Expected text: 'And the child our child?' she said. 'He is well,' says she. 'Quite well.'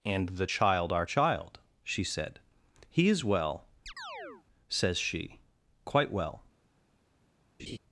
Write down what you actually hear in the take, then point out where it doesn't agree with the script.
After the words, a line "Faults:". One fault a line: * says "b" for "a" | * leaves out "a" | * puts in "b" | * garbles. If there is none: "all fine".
'And the child our child?' she said. 'He is well,' says she. 'Quite well.'
Faults:
all fine